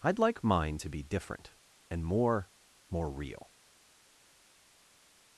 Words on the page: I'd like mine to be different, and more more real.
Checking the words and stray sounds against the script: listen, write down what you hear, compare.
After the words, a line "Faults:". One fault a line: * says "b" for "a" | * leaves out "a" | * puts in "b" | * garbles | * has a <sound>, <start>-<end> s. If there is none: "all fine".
I'd like mine to be different, and more more real.
Faults:
all fine